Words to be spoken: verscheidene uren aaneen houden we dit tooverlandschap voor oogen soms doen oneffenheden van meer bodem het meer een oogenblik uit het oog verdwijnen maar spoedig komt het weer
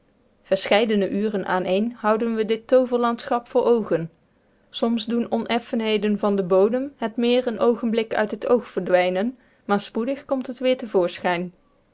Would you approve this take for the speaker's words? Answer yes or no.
no